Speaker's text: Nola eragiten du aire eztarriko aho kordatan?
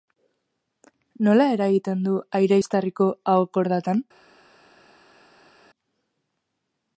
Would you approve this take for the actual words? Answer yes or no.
yes